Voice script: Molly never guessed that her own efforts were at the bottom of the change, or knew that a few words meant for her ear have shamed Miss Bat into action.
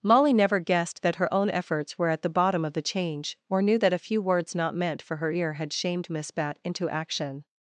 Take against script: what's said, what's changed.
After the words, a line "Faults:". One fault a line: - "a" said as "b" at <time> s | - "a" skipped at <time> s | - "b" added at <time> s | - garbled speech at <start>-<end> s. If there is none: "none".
Molly never guessed that her own efforts were at the bottom of the change, or knew that a few words not meant for her ear had shamed Miss Bat into action.
Faults:
- "not" added at 4.5 s
- "have" said as "had" at 5.5 s